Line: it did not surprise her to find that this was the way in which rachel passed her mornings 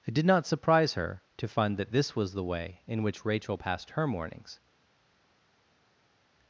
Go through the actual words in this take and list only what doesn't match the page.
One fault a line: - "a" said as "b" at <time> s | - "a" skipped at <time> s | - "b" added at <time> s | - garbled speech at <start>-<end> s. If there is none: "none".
none